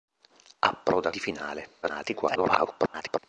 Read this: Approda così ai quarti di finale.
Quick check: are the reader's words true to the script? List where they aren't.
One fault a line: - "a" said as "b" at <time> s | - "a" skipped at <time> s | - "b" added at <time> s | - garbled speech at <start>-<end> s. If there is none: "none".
- "così ai quarti" skipped at 1.1 s
- garbled speech at 1.8-3.2 s